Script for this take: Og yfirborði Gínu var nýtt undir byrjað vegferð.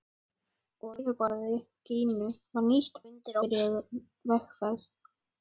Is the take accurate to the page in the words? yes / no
yes